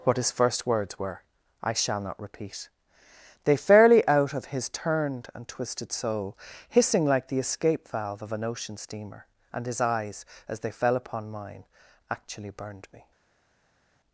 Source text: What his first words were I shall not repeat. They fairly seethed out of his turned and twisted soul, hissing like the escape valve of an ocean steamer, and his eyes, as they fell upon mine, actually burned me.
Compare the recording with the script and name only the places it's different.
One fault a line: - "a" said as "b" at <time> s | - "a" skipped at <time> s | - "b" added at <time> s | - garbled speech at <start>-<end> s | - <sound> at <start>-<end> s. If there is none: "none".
- "seethed" skipped at 4.1 s